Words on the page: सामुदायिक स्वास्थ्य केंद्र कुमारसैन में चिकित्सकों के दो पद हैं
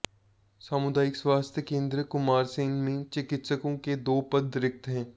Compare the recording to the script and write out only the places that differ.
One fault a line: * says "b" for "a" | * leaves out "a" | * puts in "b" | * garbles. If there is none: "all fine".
* puts in "रिक्त"